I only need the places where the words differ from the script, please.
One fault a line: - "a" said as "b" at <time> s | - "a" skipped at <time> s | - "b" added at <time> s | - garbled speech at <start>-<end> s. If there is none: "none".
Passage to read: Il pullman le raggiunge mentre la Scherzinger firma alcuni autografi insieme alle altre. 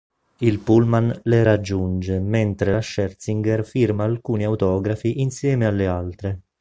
none